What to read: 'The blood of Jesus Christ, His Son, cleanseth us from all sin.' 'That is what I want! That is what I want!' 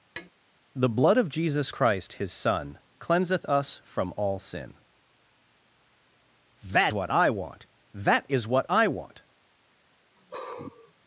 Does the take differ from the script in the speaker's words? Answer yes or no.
yes